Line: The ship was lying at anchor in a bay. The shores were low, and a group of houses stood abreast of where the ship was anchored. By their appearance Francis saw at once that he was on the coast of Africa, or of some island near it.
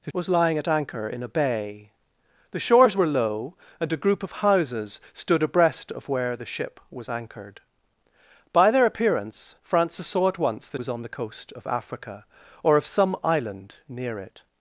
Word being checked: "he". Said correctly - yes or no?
no